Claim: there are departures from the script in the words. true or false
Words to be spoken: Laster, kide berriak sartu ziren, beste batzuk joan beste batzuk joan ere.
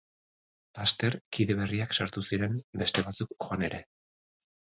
true